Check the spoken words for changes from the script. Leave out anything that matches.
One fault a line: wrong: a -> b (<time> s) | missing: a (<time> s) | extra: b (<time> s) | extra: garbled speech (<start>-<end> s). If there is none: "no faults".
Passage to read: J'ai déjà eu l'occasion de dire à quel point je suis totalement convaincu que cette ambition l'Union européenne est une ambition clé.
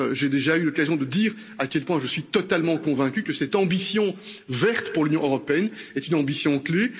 extra: verte pour (4.5 s)